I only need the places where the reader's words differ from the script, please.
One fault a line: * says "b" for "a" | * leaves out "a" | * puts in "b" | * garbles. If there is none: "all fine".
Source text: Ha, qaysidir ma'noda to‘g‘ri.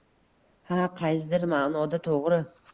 all fine